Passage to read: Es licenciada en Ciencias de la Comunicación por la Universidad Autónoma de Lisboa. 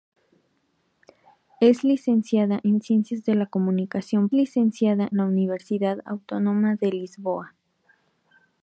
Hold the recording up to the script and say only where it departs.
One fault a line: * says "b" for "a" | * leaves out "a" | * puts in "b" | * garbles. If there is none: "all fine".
* says "licenciada" for "por"